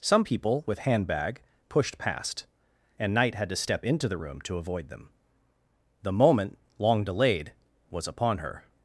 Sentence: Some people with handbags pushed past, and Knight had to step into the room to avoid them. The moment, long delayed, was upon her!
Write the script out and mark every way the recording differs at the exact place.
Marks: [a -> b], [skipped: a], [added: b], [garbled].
Some people with [handbags -> handbag] pushed past, and Knight had to step into the room to avoid them. The moment, long delayed, was upon her!